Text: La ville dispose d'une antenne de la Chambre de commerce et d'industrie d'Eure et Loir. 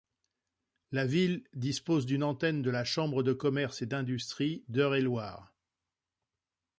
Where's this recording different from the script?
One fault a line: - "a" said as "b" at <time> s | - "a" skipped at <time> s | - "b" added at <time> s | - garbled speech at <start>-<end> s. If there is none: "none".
none